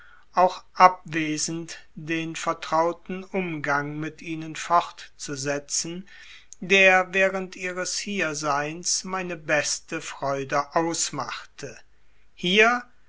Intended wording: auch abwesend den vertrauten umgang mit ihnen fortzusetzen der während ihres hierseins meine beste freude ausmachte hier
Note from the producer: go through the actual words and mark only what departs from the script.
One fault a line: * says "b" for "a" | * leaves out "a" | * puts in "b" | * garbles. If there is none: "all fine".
all fine